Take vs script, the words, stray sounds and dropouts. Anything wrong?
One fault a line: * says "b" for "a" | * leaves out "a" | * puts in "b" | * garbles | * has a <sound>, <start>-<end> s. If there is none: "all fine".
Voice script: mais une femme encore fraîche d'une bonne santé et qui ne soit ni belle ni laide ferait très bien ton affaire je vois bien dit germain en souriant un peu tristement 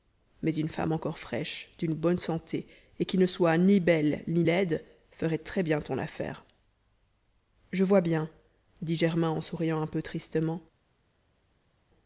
all fine